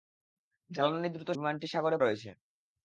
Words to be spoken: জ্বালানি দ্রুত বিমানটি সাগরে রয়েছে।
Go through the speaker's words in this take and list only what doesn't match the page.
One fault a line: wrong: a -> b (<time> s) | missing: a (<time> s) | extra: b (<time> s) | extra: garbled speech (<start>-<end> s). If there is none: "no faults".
no faults